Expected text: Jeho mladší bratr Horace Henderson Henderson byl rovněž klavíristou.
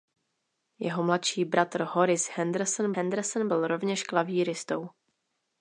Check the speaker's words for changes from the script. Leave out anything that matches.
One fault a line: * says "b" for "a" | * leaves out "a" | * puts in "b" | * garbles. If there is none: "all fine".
all fine